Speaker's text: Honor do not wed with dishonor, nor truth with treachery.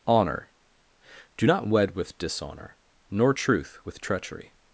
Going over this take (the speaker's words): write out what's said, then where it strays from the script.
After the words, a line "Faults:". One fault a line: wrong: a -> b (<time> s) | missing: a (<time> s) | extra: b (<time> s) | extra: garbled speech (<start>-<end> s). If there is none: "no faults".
Honor do not wed with dishonor, nor truth with treachery.
Faults:
no faults